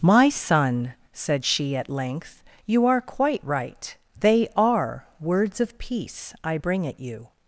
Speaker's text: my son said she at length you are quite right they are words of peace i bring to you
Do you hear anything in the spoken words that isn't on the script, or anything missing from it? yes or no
yes